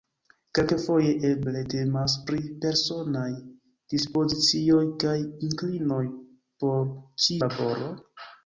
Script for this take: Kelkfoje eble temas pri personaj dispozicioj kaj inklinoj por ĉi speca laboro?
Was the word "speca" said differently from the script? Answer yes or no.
yes